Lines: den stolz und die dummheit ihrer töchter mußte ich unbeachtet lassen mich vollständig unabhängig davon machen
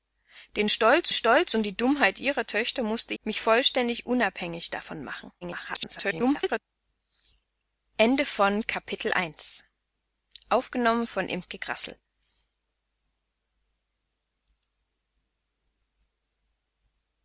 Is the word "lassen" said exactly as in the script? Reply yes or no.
no